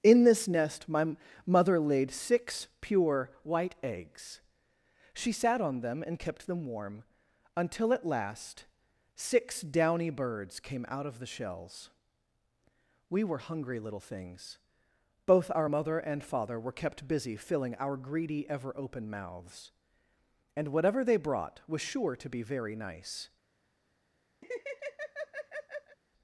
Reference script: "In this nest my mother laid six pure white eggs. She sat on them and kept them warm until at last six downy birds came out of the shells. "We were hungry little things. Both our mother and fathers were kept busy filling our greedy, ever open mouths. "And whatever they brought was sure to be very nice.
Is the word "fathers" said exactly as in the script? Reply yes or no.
no